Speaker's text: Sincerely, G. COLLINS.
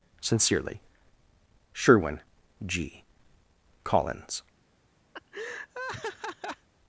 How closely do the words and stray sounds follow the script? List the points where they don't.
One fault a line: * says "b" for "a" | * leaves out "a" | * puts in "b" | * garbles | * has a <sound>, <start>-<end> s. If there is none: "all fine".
* puts in "SHERWIN"
* has a laugh, 5.1-6.7 s